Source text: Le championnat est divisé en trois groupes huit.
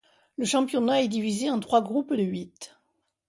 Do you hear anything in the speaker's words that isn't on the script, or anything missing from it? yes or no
no